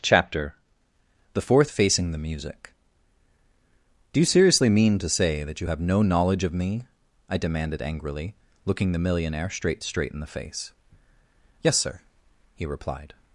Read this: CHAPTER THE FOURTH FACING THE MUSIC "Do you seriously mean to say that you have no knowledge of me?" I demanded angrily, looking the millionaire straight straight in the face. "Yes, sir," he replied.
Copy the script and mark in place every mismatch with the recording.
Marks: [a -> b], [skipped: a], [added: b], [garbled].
CHAPTER THE FOURTH FACING THE MUSIC "Do you seriously mean to say that you have no knowledge of me?" I demanded angrily, looking the millionaire straight straight in the face. "Yes, sir," he replied.